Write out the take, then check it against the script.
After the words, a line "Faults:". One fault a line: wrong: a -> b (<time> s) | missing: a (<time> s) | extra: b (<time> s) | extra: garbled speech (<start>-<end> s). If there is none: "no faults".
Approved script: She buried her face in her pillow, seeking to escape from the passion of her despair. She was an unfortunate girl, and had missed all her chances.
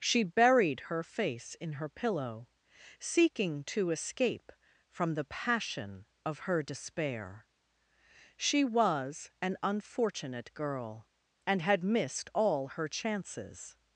She buried her face in her pillow, seeking to escape from the passion of her despair. She was an unfortunate girl, and had missed all her chances.
Faults:
no faults